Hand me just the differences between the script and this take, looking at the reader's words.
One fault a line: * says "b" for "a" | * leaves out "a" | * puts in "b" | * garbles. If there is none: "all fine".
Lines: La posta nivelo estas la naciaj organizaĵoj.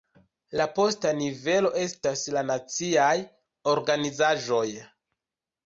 all fine